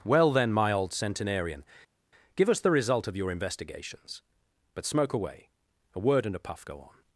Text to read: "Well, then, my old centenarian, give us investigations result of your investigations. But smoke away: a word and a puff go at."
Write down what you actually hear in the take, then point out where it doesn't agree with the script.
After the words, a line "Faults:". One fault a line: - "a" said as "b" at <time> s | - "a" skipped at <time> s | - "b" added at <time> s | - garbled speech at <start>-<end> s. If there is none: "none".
"Well, then, my old centenarian, give us the result of your investigations. But smoke away: a word and a puff go on."
Faults:
- "investigations" said as "the" at 2.6 s
- "at" said as "on" at 6.8 s